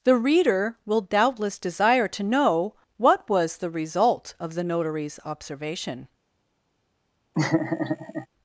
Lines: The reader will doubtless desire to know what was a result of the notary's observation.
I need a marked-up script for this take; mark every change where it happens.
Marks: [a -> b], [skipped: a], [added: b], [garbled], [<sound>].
The reader will doubtless desire to know what was [a -> the] result of the notary's observation. [laugh]